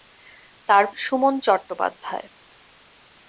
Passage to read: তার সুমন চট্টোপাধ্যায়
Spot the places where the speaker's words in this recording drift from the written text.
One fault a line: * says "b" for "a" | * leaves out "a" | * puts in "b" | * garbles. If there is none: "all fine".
all fine